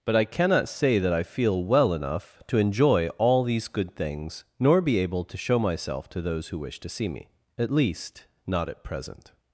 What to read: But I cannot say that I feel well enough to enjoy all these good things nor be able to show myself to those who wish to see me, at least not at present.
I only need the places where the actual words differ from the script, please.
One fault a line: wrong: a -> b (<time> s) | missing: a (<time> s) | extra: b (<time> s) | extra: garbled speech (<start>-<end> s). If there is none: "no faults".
no faults